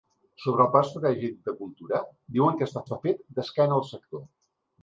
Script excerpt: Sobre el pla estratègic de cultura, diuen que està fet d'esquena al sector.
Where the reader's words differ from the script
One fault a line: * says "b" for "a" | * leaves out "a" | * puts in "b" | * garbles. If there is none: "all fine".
* puts in "està"